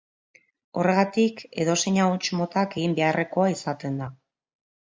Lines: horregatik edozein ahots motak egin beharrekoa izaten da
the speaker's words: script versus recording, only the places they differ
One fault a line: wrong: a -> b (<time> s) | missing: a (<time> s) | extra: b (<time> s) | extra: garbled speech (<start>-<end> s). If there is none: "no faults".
no faults